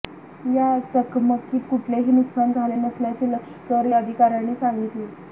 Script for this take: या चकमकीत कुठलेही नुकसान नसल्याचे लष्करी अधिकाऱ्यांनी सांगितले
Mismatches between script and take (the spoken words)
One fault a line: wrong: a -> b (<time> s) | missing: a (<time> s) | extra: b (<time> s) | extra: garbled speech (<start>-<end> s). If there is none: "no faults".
extra: झाले (2.5 s)